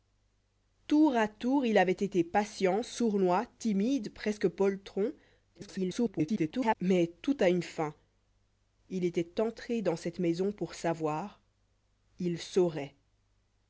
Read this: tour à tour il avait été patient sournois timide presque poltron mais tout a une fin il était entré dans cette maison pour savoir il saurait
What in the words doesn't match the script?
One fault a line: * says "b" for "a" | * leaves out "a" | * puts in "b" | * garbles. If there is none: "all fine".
* garbles